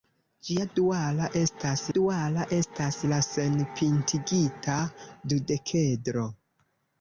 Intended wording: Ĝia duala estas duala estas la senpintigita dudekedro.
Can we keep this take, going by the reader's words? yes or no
yes